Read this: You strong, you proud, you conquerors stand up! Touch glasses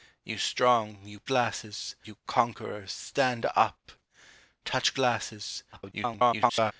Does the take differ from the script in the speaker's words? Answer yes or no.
yes